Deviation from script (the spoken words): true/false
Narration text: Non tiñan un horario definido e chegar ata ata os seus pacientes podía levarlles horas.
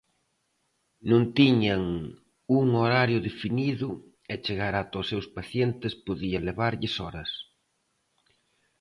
true